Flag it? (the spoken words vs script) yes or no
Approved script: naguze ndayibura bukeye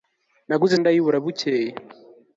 no